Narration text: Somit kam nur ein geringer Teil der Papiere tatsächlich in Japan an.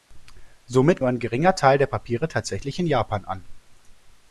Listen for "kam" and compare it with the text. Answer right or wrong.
wrong